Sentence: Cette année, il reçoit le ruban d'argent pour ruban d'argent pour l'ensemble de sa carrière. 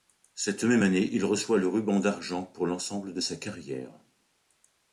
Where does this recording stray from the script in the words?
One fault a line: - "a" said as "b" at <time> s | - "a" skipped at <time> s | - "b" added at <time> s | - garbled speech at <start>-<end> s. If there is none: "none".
- "même" added at 0.6 s
- "ruban d'argent pour" skipped at 2.7 s